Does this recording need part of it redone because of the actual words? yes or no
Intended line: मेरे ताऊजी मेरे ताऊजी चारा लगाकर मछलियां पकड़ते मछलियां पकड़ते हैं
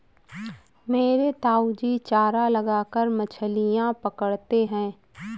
yes